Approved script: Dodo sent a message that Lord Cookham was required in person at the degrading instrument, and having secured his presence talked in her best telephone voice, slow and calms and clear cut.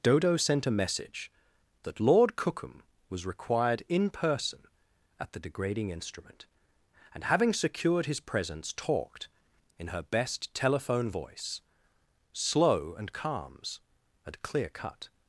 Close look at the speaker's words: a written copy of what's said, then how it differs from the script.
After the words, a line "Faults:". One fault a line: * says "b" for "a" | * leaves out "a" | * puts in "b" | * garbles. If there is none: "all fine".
Dodo sent a message that Lord Cookham was required in person at the degrading instrument, and having secured his presence talked in her best telephone voice, slow and calms and clear cut.
Faults:
all fine